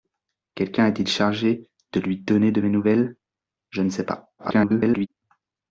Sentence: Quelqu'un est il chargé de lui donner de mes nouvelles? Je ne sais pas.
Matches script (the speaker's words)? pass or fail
fail